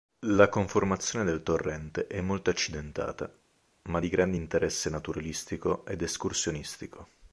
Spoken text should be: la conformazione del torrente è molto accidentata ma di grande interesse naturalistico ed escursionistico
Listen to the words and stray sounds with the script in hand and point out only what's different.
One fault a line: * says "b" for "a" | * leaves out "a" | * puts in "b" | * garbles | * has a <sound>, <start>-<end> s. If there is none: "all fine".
all fine